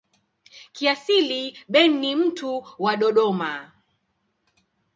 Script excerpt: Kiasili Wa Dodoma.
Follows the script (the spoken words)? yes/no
no